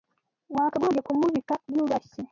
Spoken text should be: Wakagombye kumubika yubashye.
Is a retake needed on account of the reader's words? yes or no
no